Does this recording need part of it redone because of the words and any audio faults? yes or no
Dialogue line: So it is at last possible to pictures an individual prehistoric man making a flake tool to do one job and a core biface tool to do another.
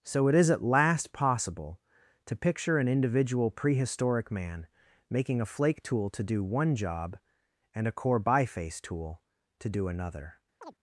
yes